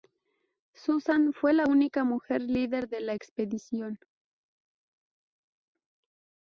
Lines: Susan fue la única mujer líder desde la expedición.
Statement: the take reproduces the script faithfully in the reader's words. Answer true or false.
false